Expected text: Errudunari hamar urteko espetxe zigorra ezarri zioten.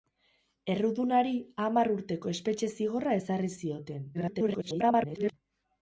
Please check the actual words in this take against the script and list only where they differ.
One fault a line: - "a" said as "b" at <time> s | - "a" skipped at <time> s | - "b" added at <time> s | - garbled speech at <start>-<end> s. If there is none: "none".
- garbled speech at 4.1-5.3 s